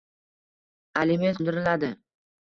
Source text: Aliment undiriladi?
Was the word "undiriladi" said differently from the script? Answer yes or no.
no